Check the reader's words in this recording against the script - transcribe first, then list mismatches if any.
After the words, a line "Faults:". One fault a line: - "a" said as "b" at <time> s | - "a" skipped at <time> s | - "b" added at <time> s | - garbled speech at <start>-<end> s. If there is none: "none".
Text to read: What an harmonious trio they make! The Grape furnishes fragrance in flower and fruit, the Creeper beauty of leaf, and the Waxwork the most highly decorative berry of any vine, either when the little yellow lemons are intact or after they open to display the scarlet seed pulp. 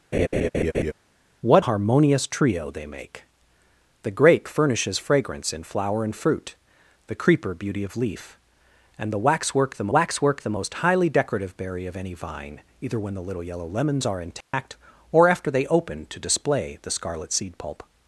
What harmonious trio they make! The Grape furnishes fragrance in flower and fruit, the Creeper beauty of leaf, and the Waxwork the Waxwork the most highly decorative berry of any vine, either when the little yellow lemons are intact or after they open to display the scarlet seed pulp.
Faults:
- "an" skipped at 1.6 s
- "Waxwork the" added at 9.9 s